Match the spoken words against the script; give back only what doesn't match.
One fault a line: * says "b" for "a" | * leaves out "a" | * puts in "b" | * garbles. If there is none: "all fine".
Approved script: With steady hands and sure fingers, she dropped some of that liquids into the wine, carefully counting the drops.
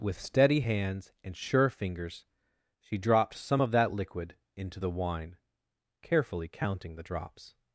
* says "liquid" for "liquids"